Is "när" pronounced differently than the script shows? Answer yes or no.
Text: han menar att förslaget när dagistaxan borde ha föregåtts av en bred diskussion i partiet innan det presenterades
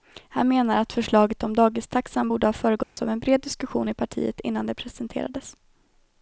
yes